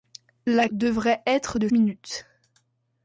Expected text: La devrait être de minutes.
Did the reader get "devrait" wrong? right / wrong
right